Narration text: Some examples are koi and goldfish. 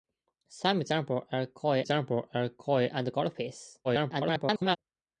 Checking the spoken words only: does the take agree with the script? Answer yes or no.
no